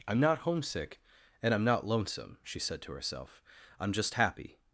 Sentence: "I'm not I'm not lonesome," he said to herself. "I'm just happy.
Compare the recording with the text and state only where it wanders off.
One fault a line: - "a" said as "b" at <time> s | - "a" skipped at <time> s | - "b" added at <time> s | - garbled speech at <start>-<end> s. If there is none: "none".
- "homesick and" added at 0.4 s
- "he" said as "she" at 2.4 s